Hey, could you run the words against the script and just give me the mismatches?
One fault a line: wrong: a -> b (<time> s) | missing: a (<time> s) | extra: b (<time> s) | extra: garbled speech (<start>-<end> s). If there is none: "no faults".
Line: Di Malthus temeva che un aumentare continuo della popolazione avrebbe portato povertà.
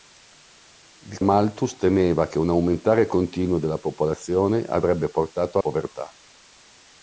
no faults